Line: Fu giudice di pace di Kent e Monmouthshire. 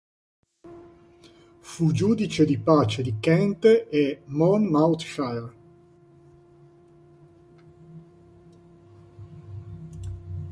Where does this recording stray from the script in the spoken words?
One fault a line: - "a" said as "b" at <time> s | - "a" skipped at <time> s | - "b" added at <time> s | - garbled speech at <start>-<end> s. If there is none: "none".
none